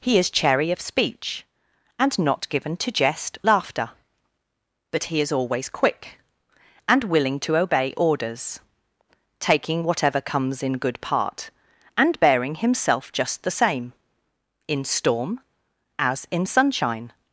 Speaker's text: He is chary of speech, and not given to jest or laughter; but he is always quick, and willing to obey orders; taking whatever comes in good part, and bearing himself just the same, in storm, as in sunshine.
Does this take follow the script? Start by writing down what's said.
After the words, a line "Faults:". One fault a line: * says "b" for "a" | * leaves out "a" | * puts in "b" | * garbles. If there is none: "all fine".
He is chary of speech, and not given to jest laughter; but he is always quick, and willing to obey orders; taking whatever comes in good part, and bearing himself just the same, in storm, as in sunshine.
Faults:
* leaves out "or"